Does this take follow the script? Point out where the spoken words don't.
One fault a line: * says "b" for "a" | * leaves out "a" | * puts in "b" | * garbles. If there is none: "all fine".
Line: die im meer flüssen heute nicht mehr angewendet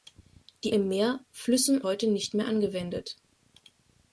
all fine